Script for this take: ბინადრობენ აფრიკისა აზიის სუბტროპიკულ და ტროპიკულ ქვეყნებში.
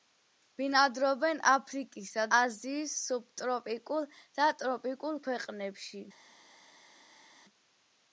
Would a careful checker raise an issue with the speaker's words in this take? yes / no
no